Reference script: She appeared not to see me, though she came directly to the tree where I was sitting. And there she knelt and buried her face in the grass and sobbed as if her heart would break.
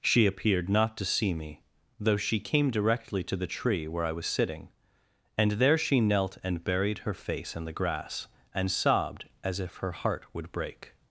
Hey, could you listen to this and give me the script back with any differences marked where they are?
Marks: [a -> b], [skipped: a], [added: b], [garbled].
She appeared not to see me, though she came directly to the tree where I was sitting. And there she knelt and buried her face in the grass and sobbed as if her heart would break.